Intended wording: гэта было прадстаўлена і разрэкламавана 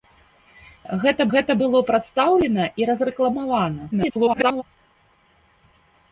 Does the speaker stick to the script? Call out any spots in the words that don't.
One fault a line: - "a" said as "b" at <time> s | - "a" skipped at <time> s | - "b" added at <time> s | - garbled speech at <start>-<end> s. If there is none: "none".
- "гэта" added at 1.3 s
- garbled speech at 3.9-4.6 s